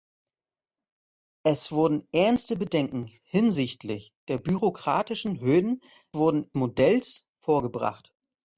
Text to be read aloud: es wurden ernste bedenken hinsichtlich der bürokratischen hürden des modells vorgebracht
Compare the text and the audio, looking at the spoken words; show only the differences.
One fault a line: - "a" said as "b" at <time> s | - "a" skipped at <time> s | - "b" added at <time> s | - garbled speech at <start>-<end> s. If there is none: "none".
- "des" said as "wurden" at 6.1 s